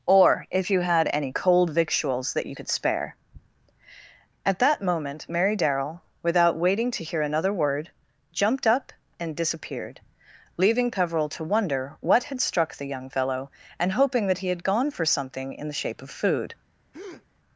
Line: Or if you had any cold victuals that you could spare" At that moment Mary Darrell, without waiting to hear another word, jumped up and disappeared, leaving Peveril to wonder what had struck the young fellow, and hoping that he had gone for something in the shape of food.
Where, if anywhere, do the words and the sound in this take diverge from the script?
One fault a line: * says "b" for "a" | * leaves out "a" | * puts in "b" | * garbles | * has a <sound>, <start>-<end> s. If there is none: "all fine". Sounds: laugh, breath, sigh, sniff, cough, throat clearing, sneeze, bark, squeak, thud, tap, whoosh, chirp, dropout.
* has a breath, 16.9-17.3 s